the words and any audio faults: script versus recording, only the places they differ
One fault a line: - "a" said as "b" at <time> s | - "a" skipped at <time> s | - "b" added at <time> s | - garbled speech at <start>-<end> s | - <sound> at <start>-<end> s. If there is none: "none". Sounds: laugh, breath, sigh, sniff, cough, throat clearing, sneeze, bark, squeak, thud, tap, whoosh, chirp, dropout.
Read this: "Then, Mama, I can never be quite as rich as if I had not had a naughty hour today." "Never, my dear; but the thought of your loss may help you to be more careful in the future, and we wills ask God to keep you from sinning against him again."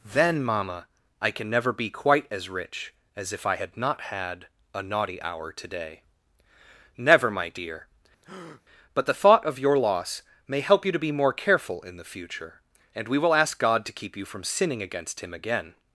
- breath at 8.2-8.6 s
- "wills" said as "will" at 13.2 s